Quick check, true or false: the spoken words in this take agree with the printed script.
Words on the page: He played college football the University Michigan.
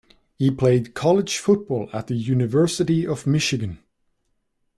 false